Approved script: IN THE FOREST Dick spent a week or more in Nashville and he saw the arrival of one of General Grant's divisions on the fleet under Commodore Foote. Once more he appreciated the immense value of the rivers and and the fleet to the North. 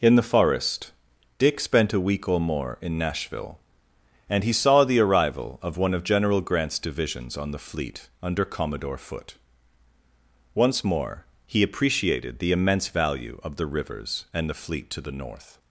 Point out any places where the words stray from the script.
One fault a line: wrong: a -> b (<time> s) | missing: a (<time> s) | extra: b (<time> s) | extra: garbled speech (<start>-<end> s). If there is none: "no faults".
missing: and (14.5 s)